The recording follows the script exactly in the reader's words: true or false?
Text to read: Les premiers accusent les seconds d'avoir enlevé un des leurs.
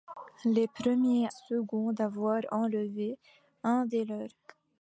false